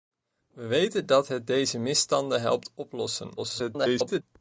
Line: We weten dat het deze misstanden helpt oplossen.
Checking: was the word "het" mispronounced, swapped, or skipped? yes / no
no